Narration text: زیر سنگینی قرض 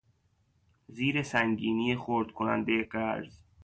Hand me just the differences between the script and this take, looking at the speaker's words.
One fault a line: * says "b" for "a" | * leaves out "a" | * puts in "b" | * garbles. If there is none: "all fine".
* puts in "خرد کنندهی"